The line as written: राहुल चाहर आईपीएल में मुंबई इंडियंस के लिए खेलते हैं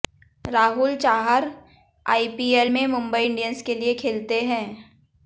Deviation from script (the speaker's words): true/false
false